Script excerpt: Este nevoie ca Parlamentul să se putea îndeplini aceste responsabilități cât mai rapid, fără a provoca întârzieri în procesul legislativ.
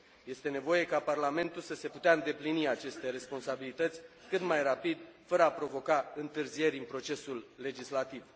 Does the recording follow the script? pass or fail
pass